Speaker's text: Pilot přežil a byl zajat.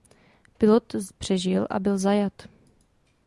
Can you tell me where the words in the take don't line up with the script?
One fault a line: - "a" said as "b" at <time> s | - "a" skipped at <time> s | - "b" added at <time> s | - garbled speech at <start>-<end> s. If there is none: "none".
none